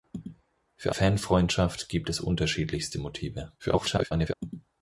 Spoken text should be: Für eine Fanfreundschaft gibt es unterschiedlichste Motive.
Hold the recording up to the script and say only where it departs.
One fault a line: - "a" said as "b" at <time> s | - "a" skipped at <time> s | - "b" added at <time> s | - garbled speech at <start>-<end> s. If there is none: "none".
- "eine" skipped at 0.9 s
- garbled speech at 3.6-4.3 s